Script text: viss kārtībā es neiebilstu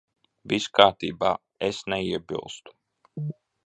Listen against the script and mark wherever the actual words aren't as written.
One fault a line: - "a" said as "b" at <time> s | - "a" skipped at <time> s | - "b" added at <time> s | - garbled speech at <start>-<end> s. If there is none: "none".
none